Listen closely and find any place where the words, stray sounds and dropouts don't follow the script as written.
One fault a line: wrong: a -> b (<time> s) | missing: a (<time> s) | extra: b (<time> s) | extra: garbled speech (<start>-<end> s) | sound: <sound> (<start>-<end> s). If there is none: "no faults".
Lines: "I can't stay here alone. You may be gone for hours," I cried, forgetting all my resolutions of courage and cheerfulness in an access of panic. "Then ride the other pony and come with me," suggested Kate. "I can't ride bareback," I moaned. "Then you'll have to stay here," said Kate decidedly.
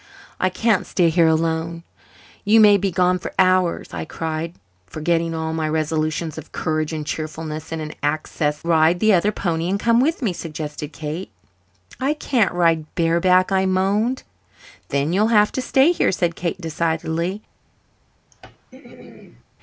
missing: of panic Then (8.6 s)
sound: throat clearing (18.3-19.5 s)